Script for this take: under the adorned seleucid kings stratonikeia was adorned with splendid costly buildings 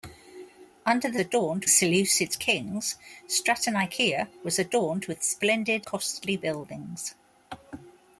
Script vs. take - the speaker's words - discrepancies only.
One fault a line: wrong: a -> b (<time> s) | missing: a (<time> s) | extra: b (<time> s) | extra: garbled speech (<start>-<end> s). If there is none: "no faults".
no faults